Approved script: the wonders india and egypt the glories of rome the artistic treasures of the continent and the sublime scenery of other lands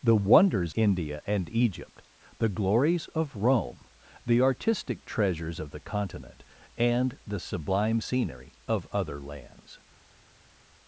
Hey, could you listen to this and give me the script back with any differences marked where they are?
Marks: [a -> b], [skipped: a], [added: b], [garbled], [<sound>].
the wonders india and egypt the glories of rome the artistic treasures of the continent and the sublime scenery of other lands